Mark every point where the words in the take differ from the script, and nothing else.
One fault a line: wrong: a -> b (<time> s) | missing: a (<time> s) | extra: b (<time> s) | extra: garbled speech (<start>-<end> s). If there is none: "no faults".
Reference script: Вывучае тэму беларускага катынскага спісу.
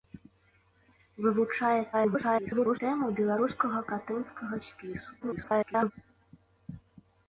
extra: garbled speech (1.9-2.8 s)
extra: garbled speech (5.2-5.9 s)